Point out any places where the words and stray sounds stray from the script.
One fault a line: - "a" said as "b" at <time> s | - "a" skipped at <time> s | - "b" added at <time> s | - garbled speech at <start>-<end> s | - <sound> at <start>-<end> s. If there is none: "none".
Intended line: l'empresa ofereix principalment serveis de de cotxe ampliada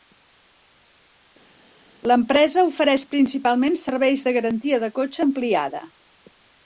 - "garantia" added at 4.4 s